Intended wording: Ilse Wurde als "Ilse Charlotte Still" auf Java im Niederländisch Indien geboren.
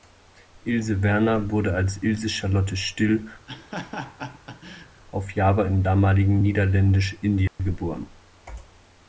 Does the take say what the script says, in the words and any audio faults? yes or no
no